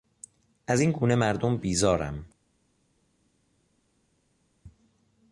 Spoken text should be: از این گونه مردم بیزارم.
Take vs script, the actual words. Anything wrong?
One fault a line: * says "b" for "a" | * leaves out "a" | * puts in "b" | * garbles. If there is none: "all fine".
all fine